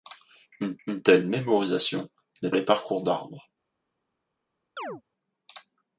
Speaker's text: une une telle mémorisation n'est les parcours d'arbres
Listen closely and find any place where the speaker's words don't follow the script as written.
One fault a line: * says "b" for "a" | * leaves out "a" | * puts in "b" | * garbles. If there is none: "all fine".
all fine